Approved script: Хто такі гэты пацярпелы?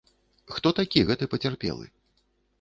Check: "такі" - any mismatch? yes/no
no